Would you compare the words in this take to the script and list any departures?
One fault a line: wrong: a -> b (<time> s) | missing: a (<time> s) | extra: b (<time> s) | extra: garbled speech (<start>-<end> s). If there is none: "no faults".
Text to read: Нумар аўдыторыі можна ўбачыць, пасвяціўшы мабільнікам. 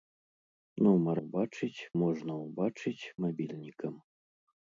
wrong: аўдыторыі -> ўбачыць (1.2 s)
missing: пасвяціўшы (3.1 s)